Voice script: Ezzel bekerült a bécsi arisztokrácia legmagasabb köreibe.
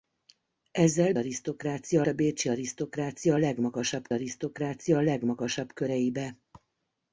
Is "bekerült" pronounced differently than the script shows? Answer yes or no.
yes